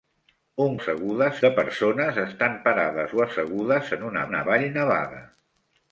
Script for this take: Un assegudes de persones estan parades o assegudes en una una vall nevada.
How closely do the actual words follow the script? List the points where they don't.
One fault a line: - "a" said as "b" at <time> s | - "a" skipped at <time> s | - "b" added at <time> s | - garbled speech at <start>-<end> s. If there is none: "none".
none